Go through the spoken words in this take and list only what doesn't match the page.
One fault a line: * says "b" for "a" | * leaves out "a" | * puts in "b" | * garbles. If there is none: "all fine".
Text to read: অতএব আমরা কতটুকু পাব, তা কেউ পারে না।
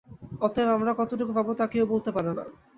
* puts in "বলতে"